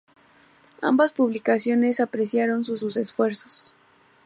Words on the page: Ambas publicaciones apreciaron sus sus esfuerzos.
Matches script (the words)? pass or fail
pass